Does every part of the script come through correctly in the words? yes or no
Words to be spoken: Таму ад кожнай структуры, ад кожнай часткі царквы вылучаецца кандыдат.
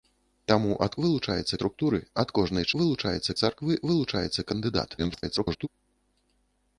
no